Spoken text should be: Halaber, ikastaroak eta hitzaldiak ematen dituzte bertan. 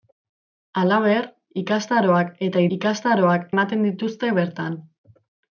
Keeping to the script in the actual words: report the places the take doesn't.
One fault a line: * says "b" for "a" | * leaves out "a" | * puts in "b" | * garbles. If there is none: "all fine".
* says "ikastaroak" for "hitzaldiak"